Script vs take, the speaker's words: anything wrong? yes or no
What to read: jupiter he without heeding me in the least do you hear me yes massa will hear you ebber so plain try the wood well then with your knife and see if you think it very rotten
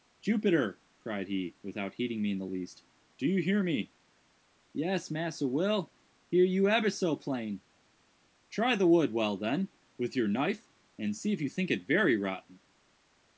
yes